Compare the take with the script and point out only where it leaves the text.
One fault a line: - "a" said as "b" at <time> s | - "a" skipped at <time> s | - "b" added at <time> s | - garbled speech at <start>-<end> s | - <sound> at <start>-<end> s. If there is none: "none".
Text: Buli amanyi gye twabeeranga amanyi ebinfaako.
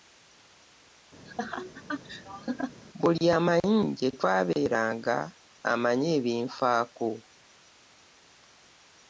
- laugh at 1.3-2.8 s